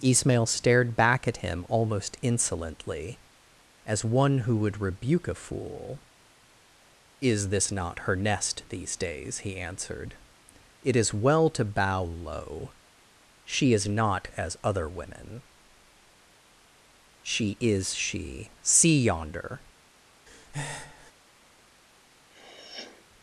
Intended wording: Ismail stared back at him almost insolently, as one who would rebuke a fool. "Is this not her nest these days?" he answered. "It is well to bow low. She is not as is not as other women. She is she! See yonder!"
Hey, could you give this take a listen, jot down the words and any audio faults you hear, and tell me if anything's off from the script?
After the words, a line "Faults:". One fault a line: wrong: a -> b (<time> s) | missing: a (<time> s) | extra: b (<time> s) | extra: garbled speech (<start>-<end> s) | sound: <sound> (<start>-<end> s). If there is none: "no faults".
Ismail stared back at him almost insolently, as one who would rebuke a fool. "Is this not her nest these days?" he answered. "It is well to bow low. She is not as other women. She is she! See yonder!"
Faults:
missing: is not as (14.6 s)
sound: breath (20.3-21.1 s)
sound: sniff (22.3-23.1 s)